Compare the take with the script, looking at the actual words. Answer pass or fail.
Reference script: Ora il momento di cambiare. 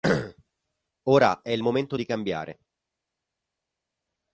fail